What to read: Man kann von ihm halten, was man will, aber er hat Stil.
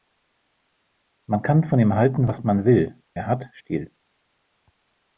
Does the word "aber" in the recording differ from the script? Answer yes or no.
yes